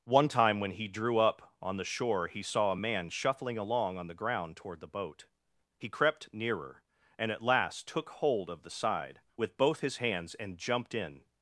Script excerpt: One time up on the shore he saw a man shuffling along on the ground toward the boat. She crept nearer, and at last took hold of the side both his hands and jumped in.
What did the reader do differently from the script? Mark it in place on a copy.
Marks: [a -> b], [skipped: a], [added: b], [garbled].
One time [added: when he drew] up on the shore he saw a man shuffling along on the ground toward the boat. [She -> He] crept nearer, and at last took hold of the side [added: with] both his hands and jumped in.